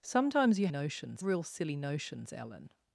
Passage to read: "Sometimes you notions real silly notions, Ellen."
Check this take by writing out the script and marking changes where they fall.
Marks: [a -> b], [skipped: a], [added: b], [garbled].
"Sometimes you notions real silly notions, Ellen."